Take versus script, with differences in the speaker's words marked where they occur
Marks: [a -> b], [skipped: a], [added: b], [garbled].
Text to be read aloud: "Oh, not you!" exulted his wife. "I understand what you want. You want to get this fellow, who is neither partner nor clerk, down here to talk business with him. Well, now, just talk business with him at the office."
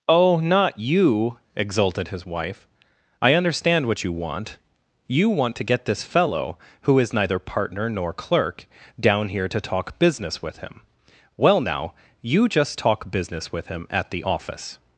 "Oh, not you!" exulted his wife. "I understand what you want. You want to get this fellow, who is neither partner nor clerk, down here to talk business with him. Well, now, [added: you] just talk business with him at the office."